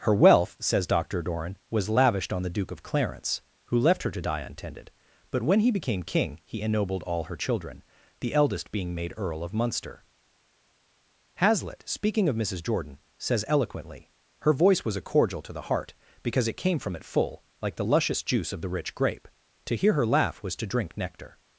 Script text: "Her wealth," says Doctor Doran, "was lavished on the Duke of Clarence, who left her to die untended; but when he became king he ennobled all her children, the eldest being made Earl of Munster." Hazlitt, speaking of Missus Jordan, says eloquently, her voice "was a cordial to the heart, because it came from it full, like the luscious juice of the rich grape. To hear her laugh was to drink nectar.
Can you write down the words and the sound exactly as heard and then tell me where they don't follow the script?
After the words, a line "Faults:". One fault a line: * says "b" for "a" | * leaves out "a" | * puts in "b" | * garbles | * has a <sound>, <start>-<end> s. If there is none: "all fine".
"Her wealth," says Doctor Doran, "was lavished on the Duke of Clarence, who left her to die untended; but when he became king he ennobled all her children, the eldest being made Earl of Munster." Hazlitt, speaking of Missus Jordan, says eloquently, her voice "was a cordial to the heart, because it came from it full, like the luscious juice of the rich grape. To hear her laugh was to drink nectar.
Faults:
all fine